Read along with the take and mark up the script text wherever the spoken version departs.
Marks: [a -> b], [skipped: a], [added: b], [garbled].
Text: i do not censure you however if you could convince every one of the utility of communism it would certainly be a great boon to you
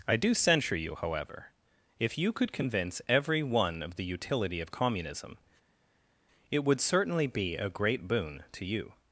i do [skipped: not] censure you however if you could convince every one of the utility of communism it would certainly be a great boon to you